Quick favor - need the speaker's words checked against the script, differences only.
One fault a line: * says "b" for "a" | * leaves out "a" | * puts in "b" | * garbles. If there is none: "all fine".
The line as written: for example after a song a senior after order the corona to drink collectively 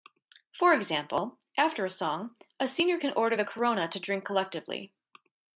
* says "can" for "after"